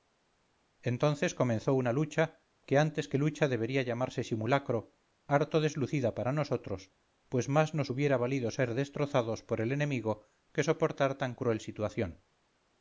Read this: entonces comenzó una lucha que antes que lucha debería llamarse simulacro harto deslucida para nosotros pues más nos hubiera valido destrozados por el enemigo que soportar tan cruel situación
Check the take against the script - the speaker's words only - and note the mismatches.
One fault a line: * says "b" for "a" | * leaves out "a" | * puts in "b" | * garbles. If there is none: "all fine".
* puts in "ser"